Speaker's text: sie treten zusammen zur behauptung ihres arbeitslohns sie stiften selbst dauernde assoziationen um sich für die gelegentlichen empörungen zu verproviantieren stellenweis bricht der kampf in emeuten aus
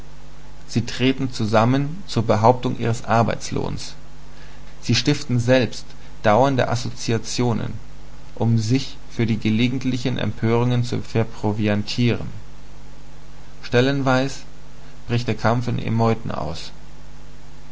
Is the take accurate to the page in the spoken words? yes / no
yes